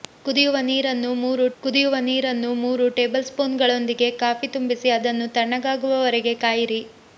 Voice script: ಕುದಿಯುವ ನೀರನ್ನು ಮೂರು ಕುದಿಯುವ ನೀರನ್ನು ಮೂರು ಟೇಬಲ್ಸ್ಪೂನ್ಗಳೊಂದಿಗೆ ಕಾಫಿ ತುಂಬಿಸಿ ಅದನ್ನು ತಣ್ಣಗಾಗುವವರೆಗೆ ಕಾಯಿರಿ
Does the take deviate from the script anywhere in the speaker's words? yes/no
no